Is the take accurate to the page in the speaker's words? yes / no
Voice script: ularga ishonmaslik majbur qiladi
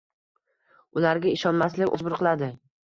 yes